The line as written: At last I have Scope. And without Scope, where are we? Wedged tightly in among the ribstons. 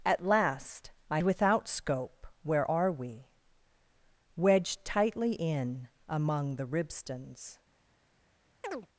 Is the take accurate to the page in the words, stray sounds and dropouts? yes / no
no